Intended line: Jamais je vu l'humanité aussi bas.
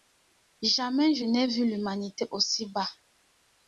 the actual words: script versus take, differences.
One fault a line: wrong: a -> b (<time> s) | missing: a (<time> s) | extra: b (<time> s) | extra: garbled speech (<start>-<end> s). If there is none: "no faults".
extra: n'ai (1.2 s)